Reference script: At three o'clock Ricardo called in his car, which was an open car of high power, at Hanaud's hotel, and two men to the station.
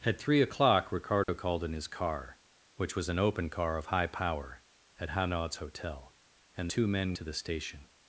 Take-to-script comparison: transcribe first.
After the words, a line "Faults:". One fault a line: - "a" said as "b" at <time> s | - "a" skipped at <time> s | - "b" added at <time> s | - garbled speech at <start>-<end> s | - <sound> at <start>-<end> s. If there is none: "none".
At three o'clock Ricardo called in his car, which was an open car of high power, at Hanaud's hotel, and two men to the station.
Faults:
- dropout at 1.2-1.3 s